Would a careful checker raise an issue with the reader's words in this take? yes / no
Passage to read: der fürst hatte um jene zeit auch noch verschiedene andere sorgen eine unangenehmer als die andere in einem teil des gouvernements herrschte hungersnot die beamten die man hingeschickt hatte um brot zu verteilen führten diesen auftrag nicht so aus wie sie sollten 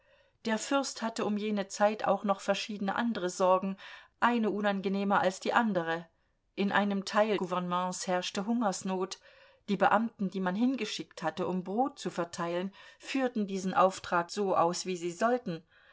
yes